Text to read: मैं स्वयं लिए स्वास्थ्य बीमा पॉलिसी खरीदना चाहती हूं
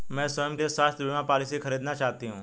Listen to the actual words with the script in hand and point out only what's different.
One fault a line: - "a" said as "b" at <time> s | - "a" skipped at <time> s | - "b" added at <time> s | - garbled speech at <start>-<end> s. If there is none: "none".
none